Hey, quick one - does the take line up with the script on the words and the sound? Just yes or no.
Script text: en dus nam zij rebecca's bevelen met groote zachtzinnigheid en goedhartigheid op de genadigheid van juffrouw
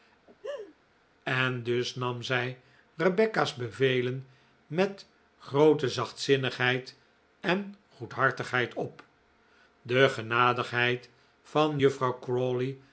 no